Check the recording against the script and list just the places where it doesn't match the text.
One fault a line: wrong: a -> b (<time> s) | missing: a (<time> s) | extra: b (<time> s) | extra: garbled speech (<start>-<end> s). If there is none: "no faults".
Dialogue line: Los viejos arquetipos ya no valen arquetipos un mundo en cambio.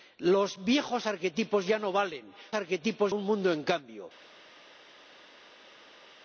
no faults